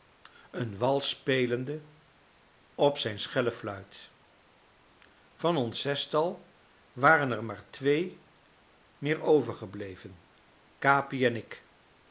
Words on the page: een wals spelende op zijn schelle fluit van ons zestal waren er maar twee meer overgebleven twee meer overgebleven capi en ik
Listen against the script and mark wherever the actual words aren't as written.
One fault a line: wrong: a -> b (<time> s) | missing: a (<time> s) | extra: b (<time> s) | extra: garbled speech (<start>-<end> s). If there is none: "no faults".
missing: twee meer overgebleven (10.2 s)